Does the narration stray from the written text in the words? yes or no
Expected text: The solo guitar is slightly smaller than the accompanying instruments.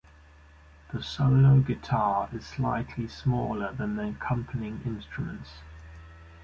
no